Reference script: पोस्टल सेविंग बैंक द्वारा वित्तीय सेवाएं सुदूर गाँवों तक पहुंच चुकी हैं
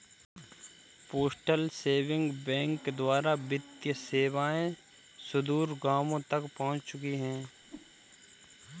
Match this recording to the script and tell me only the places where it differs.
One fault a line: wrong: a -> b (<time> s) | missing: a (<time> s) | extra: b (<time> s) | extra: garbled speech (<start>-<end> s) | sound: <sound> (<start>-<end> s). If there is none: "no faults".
sound: whoosh (7.6-7.9 s)